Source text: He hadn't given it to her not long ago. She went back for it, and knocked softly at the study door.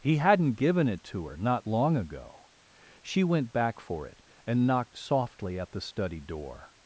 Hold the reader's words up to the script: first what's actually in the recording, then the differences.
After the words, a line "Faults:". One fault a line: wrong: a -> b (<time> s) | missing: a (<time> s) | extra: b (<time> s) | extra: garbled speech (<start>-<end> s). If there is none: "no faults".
He hadn't given it to her not long ago. She went back for it, and knocked softly at the study door.
Faults:
no faults